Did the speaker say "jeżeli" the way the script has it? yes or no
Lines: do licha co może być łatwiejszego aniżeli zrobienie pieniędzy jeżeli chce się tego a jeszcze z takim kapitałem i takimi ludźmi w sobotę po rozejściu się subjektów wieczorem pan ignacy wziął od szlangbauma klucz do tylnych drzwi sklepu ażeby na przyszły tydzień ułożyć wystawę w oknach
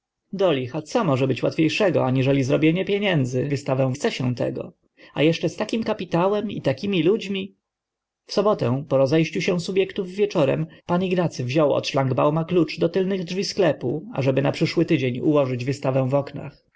no